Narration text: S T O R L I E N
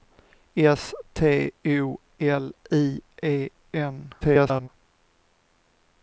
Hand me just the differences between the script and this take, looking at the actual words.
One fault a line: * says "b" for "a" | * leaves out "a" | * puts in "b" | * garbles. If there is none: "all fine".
* leaves out "R"
* garbles